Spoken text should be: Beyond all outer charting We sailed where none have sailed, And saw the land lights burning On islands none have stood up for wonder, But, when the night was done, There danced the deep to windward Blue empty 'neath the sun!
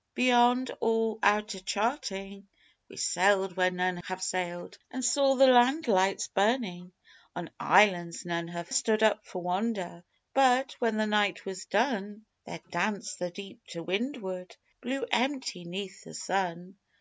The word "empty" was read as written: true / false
true